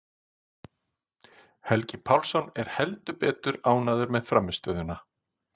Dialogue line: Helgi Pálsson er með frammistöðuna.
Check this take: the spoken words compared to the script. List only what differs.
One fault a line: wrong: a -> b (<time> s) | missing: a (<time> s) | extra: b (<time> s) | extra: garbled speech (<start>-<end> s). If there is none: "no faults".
extra: heldur betur ánægður (2.8 s)